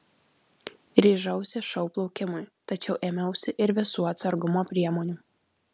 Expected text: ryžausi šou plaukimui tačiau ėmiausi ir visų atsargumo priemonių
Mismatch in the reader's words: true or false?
false